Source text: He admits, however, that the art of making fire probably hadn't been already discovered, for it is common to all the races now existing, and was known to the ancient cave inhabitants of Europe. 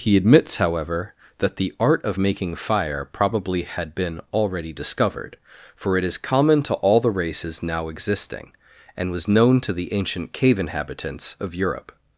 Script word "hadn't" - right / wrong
wrong